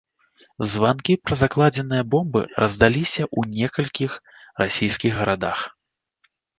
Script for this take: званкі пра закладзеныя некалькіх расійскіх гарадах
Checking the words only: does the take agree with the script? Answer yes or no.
no